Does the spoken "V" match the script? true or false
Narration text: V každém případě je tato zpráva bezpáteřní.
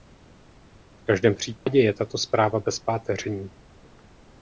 true